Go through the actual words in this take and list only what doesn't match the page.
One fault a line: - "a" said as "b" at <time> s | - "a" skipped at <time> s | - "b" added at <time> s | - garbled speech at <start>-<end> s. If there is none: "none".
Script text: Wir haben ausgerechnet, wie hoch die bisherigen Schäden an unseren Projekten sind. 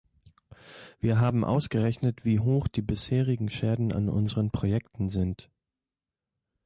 none